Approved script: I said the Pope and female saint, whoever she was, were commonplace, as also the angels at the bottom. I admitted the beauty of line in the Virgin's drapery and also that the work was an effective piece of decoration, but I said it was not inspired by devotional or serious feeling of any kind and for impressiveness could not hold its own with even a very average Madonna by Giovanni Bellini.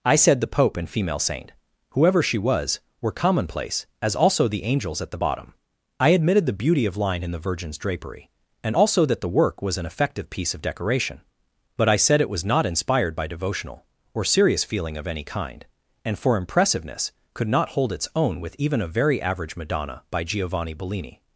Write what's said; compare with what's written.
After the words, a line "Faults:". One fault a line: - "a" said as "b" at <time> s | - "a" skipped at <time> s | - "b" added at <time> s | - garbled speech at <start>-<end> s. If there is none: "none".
I said the Pope and female saint, whoever she was, were commonplace, as also the angels at the bottom. I admitted the beauty of line in the Virgin's drapery and also that the work was an effective piece of decoration, but I said it was not inspired by devotional or serious feeling of any kind and for impressiveness could not hold its own with even a very average Madonna by Giovanni Bellini.
Faults:
none